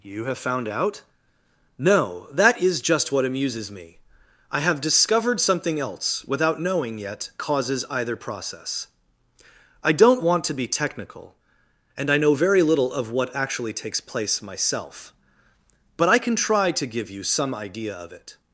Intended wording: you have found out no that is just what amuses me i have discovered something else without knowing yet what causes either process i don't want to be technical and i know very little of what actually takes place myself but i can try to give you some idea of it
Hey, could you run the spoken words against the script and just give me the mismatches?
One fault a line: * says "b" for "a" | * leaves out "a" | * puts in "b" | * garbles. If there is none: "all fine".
* leaves out "what"